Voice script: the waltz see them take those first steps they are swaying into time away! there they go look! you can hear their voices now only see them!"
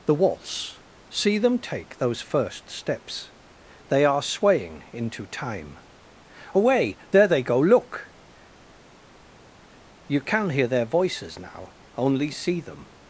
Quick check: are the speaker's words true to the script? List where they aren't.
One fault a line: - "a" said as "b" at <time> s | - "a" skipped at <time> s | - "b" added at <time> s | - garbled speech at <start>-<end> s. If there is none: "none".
none